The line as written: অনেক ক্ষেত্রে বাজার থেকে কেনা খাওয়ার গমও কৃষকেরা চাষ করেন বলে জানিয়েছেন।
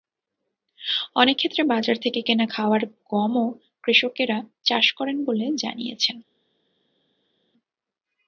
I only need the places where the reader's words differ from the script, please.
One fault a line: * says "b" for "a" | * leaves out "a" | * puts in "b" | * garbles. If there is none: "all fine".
all fine